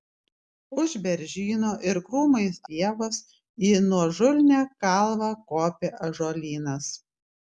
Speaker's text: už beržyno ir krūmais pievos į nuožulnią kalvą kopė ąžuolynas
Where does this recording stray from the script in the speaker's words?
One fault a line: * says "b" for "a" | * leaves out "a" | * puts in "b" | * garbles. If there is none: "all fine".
all fine